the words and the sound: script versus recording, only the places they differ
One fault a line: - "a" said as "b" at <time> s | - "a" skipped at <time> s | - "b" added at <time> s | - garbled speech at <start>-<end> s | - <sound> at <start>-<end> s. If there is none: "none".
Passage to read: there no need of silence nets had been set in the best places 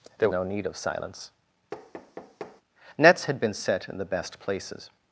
- thud at 1.7-2.6 s